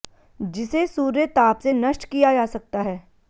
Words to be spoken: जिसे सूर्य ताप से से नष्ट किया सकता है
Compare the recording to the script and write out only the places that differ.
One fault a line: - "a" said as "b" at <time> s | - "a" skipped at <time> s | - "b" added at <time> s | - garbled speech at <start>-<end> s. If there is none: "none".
- "से" skipped at 1.7 s
- "जा" added at 2.3 s